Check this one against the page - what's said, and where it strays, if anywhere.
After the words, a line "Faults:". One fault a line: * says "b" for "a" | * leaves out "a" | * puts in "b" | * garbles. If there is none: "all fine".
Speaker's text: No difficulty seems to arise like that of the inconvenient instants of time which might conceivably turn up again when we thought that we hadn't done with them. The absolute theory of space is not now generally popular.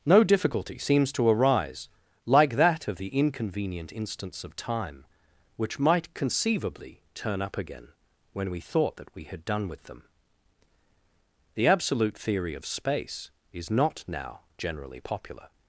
No difficulty seems to arise like that of the inconvenient instants of time which might conceivably turn up again when we thought that we had done with them. The absolute theory of space is not now generally popular.
Faults:
* says "had" for "hadn't"